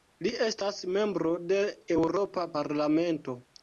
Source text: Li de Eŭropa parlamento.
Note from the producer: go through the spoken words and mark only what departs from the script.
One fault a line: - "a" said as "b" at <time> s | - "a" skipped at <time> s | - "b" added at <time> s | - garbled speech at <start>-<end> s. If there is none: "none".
- "estas membro" added at 0.5 s